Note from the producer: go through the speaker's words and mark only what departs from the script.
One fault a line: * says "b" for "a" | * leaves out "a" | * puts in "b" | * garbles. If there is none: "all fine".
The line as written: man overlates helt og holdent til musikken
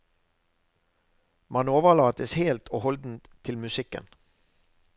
all fine